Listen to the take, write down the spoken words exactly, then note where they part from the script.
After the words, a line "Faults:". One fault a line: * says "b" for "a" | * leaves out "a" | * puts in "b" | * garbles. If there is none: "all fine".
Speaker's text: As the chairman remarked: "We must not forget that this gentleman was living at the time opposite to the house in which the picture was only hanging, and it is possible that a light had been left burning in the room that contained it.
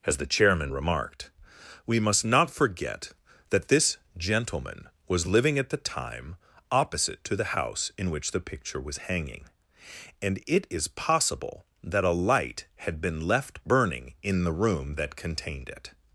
As the chairman remarked: "We must not forget that this gentleman was living at the time opposite to the house in which the picture was hanging, and it is possible that a light had been left burning in the room that contained it.
Faults:
* leaves out "only"